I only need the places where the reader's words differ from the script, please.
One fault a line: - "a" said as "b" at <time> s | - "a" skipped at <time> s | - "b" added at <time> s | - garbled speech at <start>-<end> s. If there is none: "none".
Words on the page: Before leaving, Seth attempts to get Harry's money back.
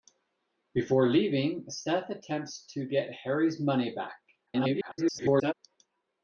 - garbled speech at 4.5-5.5 s